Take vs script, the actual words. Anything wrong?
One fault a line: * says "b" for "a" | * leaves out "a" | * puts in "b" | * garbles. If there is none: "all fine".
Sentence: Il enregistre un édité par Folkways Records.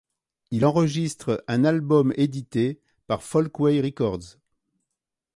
* puts in "album"